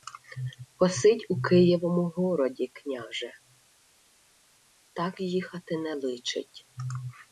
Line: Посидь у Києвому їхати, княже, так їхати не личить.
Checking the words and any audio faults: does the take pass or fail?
fail